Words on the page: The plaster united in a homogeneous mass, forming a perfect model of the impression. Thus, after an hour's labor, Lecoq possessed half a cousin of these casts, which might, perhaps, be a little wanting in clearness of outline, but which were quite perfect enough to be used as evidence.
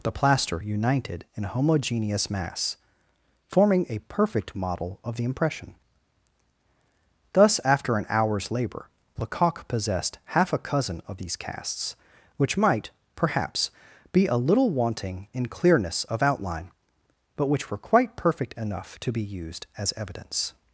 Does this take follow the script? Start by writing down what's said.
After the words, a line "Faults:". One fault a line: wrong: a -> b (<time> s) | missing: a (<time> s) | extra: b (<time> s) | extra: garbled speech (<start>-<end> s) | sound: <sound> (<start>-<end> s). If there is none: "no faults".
The plaster united in a homogeneous mass, forming a perfect model of the impression. Thus, after an hour's labor, Lecoq possessed half a cousin of these casts, which might, perhaps, be a little wanting in clearness of outline, but which were quite perfect enough to be used as evidence.
Faults:
no faults